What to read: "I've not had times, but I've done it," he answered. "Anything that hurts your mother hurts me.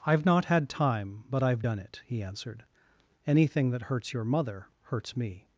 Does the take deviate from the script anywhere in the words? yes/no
yes